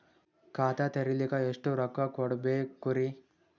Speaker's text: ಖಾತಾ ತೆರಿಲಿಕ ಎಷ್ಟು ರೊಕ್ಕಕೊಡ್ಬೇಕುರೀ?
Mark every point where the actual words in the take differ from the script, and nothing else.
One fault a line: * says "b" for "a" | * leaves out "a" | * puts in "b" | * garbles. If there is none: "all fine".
all fine